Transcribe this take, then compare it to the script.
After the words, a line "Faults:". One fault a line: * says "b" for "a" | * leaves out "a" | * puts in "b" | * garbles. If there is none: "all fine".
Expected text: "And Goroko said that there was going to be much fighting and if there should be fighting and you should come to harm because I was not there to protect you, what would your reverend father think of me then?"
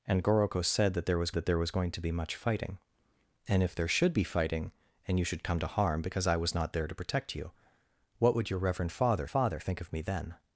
"And Goroko said that there was that there was going to be much fighting and if there should be fighting and you should come to harm because I was not there to protect you, what would your reverend father father think of me then?"
Faults:
* puts in "that there was"
* puts in "father"